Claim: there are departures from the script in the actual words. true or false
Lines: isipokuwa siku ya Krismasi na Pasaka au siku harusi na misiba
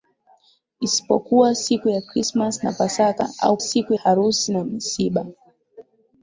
false